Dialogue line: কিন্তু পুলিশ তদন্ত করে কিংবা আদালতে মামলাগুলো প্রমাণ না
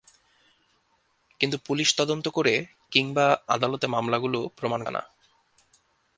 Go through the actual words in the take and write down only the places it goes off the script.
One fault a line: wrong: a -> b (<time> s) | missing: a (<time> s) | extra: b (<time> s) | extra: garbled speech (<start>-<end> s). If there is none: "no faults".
no faults